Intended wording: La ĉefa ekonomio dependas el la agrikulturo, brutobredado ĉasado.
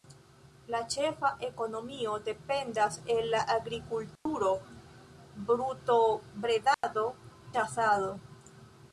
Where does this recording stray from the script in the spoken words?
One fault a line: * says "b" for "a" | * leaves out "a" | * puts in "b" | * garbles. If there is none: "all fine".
all fine